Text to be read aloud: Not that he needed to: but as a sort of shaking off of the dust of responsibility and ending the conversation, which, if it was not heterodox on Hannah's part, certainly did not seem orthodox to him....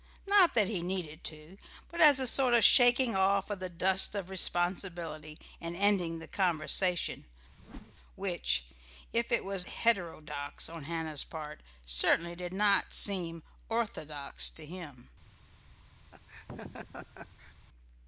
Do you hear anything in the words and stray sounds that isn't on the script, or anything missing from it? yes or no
yes